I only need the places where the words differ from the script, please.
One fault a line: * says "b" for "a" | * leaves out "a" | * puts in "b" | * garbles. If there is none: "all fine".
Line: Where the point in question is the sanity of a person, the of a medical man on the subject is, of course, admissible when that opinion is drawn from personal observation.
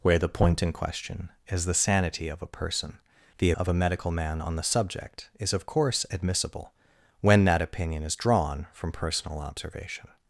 all fine